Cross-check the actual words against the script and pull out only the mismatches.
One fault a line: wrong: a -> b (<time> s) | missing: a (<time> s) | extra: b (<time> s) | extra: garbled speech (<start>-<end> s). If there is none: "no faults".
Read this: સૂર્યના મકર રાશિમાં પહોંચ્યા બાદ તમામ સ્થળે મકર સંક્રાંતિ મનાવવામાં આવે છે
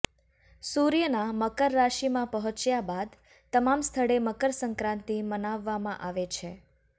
no faults